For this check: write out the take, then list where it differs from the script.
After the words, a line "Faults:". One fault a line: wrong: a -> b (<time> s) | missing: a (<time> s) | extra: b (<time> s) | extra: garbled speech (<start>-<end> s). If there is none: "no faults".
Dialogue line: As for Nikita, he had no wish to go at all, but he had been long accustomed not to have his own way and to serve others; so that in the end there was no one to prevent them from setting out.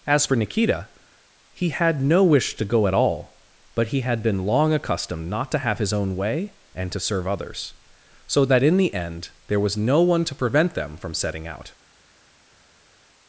As for Nikita, he had no wish to go at all, but he had been long accustomed not to have his own way and to serve others; so that in the end there was no one to prevent them from setting out.
Faults:
no faults